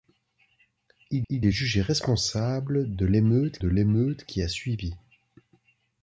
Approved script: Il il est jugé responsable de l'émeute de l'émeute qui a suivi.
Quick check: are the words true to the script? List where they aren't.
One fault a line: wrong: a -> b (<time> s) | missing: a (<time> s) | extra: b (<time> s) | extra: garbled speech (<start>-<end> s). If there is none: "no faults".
no faults